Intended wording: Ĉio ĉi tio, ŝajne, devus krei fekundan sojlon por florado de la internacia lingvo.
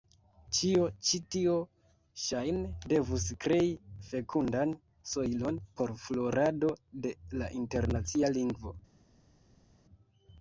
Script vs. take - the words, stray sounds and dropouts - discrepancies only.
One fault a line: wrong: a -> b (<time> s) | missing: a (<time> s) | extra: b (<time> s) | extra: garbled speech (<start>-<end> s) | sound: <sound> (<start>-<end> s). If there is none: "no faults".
no faults